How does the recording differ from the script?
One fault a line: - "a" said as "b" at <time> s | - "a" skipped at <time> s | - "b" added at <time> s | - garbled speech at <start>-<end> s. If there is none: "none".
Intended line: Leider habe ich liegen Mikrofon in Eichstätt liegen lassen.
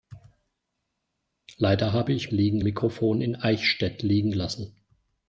none